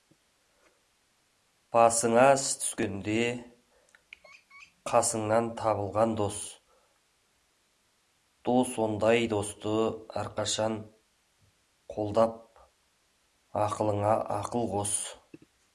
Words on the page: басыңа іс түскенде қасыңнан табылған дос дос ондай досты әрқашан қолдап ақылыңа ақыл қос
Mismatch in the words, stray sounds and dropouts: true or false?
false